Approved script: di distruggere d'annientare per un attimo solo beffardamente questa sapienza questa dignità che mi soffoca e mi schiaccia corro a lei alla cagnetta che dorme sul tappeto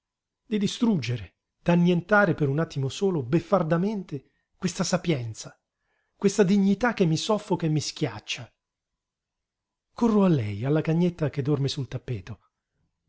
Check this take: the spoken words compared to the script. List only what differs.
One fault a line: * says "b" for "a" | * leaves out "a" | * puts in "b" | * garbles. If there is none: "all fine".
all fine